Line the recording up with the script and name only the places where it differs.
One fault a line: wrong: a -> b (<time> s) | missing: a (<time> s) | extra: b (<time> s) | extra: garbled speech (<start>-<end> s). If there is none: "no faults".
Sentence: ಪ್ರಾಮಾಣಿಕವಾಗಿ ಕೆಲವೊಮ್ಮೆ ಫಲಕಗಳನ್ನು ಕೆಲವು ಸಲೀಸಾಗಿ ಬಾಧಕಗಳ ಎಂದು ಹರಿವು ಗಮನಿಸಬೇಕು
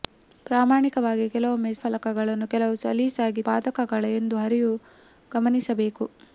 no faults